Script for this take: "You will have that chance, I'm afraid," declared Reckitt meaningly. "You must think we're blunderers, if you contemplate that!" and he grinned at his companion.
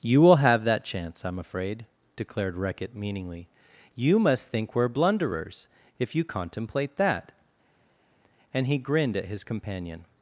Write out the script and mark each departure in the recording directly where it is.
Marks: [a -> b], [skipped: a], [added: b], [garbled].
"You will have that chance, I'm afraid," declared Reckitt meaningly. "You must think we're blunderers, if you contemplate that!" and he grinned at his companion.